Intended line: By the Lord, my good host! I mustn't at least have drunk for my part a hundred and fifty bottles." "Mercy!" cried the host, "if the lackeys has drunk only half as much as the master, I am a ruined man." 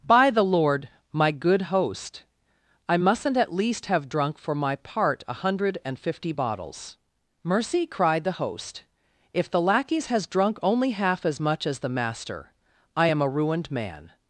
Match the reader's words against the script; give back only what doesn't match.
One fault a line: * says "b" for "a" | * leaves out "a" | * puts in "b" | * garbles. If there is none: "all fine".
all fine